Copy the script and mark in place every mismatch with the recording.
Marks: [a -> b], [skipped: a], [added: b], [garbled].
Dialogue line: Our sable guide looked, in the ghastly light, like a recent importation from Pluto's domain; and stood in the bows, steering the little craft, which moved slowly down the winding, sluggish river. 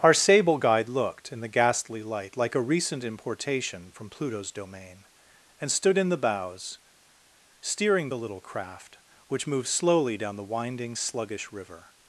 Our sable guide looked, in the ghastly light, like a recent importation from Pluto's domain; and stood in the bows, steering the little craft, which moved slowly down the winding, sluggish river.